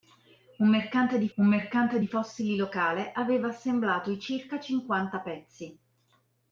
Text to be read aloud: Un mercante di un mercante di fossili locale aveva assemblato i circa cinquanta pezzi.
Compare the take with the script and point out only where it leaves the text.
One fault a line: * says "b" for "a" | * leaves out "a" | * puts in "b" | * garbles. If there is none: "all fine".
all fine